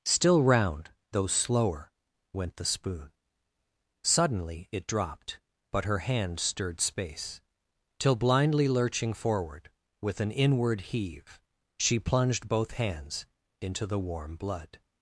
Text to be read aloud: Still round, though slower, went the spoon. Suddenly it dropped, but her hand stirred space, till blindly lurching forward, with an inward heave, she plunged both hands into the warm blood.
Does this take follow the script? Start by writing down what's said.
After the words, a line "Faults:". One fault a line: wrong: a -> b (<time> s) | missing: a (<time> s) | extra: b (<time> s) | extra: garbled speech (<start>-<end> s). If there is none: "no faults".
Still round, though slower, went the spoon. Suddenly it dropped, but her hand stirred space, till blindly lurching forward, with an inward heave, she plunged both hands into the warm blood.
Faults:
no faults